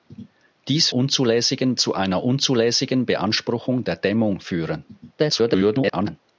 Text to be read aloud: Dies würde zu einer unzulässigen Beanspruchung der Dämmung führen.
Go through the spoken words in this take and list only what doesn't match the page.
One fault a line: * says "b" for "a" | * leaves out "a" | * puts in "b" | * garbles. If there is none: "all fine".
* says "unzulässigen" for "würde"
* garbles